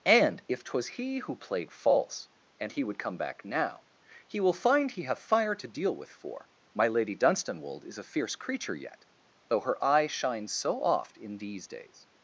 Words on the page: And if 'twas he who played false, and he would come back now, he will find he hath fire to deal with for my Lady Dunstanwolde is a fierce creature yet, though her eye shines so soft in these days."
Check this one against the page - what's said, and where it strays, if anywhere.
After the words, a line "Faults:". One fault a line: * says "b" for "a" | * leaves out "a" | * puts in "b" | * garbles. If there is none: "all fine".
And if 'twas he who played false, and he would come back now, he will find he have fire to deal with for my Lady Dunstanwolde is a fierce creature yet, though her eye shines so oft in these days."
Faults:
* says "have" for "hath"
* says "oft" for "soft"